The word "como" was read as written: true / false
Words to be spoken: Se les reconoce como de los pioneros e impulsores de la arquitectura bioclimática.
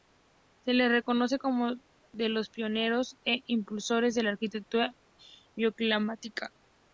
true